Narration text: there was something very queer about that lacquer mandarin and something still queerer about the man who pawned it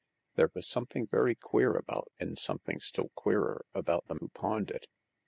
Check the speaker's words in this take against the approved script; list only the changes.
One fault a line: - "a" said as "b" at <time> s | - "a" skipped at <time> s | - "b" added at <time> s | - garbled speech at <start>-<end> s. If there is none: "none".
- "that lacquer mandarin" skipped at 2.1 s
- "man" skipped at 4.2 s